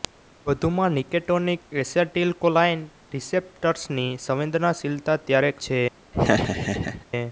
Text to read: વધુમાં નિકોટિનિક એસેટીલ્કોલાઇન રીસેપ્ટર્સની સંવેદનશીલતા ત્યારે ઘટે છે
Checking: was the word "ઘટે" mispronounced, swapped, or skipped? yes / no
yes